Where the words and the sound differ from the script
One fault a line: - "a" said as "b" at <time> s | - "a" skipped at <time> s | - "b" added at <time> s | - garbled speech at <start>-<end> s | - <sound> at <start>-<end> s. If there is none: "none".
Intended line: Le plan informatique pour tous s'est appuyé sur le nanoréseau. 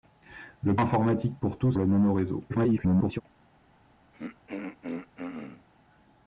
- "plan" skipped at 0.8 s
- "s'est appuyé sur" skipped at 1.7 s
- garbled speech at 2.5-3.2 s
- throat clearing at 4.1-5.7 s